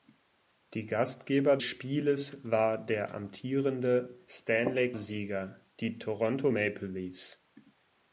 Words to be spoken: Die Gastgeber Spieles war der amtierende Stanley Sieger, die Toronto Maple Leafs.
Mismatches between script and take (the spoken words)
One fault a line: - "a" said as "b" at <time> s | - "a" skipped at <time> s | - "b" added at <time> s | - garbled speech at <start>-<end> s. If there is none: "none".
none